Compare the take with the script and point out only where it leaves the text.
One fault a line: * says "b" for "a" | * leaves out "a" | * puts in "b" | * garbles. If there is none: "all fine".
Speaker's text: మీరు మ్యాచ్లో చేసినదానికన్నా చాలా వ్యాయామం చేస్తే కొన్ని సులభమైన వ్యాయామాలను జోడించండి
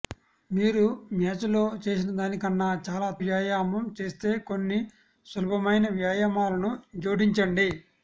all fine